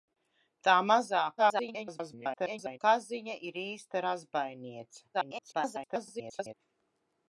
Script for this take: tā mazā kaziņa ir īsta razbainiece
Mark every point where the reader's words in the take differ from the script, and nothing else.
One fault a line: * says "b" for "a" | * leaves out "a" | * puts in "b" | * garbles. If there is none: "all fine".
* garbles
* garbles